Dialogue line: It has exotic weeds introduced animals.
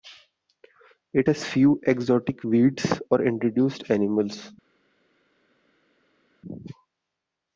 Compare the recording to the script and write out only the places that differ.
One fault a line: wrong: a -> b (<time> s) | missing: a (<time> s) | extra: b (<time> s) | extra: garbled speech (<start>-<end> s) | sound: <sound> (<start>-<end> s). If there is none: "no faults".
extra: few (1.4 s)
extra: or (3.1 s)